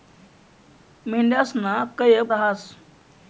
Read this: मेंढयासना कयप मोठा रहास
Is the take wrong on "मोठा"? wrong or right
wrong